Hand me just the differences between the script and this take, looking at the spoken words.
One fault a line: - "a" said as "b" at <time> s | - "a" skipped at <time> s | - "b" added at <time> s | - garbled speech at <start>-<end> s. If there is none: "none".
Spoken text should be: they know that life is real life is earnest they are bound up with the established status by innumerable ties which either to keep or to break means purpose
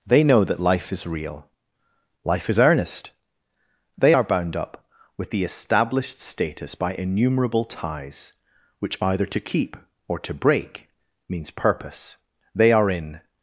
- "they are in" added at 12.6 s